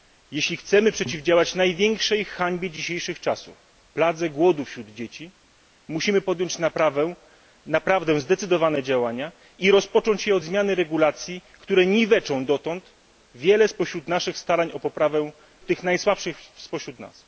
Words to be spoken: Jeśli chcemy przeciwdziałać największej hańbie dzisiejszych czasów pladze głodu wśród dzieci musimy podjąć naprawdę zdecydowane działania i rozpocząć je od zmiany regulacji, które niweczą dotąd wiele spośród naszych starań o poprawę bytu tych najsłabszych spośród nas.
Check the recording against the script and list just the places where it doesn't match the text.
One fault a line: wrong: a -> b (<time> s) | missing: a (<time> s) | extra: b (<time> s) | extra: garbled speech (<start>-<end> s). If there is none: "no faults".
missing: bytu (15.3 s)